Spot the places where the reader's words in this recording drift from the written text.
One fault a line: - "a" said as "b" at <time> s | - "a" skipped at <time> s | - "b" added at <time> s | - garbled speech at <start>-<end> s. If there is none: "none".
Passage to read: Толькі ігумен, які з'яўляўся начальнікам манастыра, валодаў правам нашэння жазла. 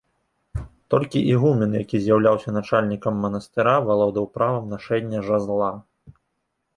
none